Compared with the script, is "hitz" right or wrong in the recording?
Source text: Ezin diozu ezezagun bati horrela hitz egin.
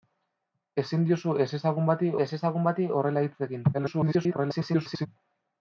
right